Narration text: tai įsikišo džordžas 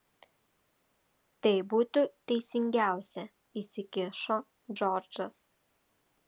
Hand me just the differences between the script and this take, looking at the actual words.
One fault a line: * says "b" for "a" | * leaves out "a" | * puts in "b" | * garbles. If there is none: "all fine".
* puts in "būtų teisingiausia"